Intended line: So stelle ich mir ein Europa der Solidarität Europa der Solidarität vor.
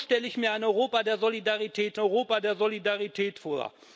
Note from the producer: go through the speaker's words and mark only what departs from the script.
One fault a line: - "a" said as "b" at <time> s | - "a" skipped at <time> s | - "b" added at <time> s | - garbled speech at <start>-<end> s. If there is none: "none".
none